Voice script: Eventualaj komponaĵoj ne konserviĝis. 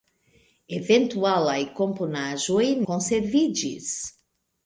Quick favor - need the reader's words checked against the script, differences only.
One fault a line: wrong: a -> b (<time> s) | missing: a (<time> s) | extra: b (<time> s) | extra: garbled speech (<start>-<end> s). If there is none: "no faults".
missing: ne (2.6 s)